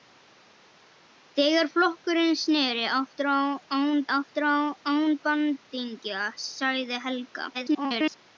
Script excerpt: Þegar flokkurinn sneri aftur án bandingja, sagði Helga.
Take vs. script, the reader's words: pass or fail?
fail